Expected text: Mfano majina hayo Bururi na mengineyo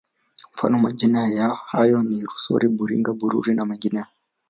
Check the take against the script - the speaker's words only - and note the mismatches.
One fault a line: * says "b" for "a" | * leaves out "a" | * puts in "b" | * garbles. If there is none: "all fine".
* puts in "ni Rusori Buringa"